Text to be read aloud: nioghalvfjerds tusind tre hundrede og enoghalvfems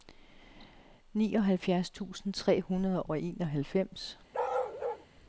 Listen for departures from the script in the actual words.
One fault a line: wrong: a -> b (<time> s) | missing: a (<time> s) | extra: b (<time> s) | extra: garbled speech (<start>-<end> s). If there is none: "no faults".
no faults